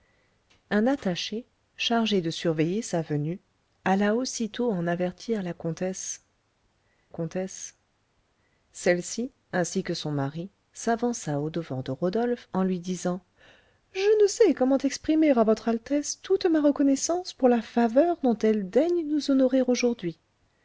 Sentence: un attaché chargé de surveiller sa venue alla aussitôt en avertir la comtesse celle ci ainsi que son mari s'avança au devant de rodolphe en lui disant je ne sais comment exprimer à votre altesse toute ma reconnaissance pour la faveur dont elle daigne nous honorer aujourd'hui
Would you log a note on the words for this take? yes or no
yes